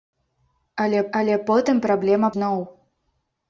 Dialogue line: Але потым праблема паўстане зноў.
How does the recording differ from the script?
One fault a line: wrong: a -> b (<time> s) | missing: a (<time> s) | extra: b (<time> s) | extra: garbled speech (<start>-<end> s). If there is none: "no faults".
extra: але (1.2 s)
missing: паўстане (2.3 s)